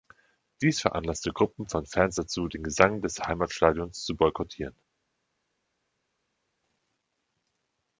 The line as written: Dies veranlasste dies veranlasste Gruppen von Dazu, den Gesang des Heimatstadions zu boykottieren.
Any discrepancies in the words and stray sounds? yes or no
yes